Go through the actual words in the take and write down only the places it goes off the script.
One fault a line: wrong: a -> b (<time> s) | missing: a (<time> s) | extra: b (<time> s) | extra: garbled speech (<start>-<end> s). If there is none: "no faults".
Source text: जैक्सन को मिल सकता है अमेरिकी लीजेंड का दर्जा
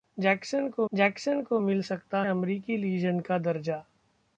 extra: जैक्सन को (0.9 s)
missing: है (2.2 s)